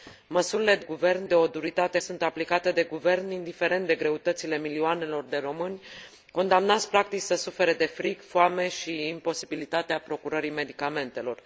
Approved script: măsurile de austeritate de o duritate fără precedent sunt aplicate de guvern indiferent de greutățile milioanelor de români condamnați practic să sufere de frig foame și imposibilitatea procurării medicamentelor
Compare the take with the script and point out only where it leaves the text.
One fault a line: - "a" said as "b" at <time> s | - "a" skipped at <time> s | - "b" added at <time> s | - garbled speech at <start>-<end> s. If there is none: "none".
- "austeritate" said as "guvern" at 0.8 s
- "fără precedent" skipped at 2.0 s